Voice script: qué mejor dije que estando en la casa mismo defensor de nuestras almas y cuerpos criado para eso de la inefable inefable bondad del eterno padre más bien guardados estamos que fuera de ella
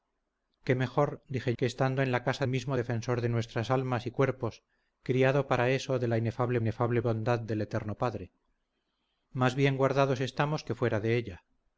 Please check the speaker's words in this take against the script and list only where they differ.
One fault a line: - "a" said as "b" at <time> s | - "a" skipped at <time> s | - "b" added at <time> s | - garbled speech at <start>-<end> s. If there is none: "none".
none